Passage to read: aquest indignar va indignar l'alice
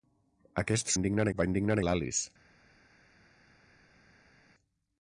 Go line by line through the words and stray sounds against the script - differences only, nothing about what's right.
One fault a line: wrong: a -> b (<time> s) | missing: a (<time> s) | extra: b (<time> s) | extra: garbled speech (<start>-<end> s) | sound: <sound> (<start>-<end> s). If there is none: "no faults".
no faults